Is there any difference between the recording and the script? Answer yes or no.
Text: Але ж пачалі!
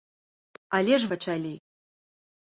no